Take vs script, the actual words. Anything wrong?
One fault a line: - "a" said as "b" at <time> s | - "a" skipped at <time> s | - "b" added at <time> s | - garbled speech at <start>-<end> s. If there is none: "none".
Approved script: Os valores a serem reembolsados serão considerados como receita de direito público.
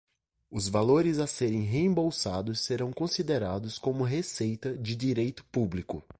none